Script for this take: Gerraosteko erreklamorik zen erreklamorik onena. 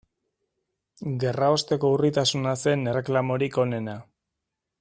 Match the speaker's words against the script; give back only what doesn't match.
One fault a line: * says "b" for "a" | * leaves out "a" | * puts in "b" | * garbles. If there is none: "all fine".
* says "urritasuna" for "erreklamorik"